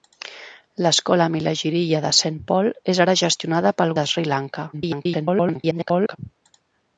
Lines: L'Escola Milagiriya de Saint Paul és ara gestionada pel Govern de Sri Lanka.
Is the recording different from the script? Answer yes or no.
yes